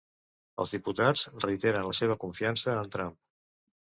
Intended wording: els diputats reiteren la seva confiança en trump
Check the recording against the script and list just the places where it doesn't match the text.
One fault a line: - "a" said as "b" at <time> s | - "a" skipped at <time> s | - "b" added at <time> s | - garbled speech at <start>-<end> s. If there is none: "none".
none